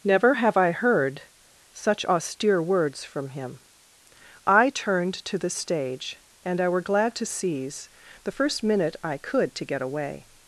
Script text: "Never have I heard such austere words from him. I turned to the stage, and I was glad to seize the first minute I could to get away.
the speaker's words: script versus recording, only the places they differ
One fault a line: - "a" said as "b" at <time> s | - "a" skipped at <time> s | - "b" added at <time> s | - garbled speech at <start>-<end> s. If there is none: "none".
- "was" said as "were" at 6.7 s